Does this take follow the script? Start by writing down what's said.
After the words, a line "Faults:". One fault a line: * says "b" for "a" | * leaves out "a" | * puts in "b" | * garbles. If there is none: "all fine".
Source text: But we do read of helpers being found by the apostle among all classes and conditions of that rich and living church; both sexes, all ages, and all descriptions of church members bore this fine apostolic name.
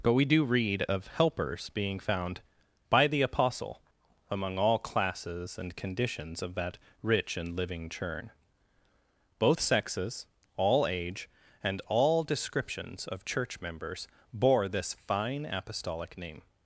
But we do read of helpers being found by the apostle among all classes and conditions of that rich and living churn; both sexes, all age, and all descriptions of church members bore this fine apostolic name.
Faults:
* says "churn" for "church"
* says "age" for "ages"